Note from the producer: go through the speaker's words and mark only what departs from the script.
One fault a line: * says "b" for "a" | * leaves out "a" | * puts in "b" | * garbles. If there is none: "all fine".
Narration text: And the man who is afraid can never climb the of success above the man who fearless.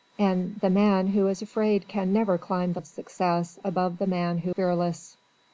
all fine